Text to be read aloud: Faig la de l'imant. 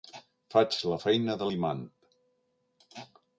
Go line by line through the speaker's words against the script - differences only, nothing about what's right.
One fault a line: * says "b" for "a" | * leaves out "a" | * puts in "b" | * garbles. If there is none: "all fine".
* puts in "feina"